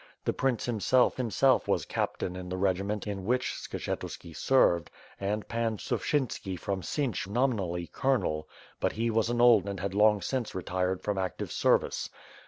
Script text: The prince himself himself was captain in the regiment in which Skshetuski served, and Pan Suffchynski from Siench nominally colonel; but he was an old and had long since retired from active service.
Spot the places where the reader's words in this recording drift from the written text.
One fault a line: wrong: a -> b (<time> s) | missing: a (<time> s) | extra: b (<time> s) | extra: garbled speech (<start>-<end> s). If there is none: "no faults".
no faults